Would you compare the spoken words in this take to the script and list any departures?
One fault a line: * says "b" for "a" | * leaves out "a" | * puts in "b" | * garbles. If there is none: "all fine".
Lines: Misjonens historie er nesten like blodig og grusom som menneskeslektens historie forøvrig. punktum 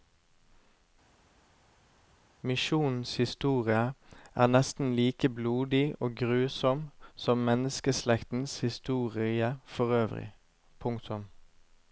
all fine